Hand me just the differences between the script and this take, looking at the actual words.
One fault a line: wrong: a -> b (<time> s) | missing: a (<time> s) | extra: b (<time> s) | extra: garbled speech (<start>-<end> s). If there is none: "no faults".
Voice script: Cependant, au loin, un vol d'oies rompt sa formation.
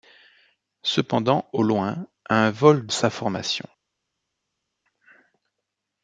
missing: d'oies rompt (2.9 s)